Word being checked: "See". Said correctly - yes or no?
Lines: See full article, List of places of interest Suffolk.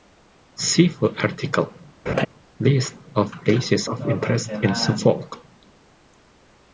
yes